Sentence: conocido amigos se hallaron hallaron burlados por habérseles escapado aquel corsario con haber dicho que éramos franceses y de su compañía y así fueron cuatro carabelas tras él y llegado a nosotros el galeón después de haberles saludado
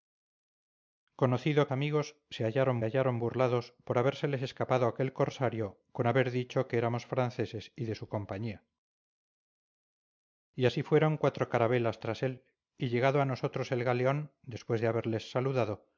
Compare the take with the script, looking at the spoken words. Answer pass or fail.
pass